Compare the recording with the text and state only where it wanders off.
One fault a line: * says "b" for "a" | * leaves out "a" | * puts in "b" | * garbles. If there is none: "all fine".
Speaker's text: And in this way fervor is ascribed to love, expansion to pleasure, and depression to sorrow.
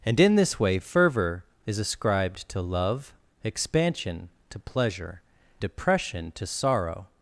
* leaves out "and"